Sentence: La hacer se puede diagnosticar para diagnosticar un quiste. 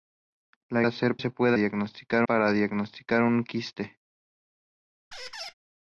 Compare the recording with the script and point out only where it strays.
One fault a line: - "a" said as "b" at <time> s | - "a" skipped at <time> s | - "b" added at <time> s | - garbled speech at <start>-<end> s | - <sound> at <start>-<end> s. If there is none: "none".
- squeak at 5.1-5.5 s